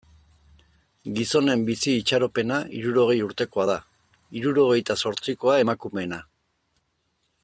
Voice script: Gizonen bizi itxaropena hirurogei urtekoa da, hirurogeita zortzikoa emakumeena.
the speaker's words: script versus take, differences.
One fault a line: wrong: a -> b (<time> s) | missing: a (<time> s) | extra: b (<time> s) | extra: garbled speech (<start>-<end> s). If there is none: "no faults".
no faults